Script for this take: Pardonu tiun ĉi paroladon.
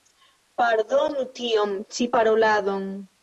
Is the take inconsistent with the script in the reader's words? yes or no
no